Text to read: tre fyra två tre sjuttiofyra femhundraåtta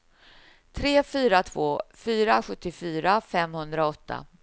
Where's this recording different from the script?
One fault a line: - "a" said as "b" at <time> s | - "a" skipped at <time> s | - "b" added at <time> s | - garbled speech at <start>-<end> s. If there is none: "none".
- "tre" said as "fyra" at 1.9 s